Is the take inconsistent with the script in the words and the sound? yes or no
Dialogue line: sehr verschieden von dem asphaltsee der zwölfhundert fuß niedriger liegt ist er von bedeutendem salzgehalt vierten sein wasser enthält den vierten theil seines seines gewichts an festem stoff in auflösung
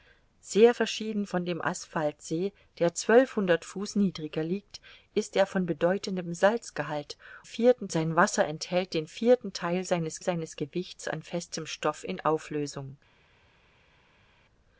no